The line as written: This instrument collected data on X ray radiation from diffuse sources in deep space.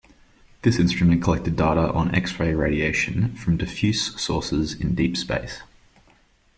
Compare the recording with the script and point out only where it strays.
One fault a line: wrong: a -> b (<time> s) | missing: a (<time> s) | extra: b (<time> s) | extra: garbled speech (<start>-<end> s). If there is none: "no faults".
no faults